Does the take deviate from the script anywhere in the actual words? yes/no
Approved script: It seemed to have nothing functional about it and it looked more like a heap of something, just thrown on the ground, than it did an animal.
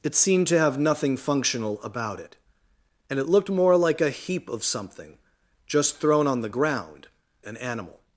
yes